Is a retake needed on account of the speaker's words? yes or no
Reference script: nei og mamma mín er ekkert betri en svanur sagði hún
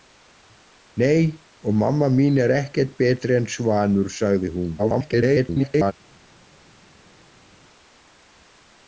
yes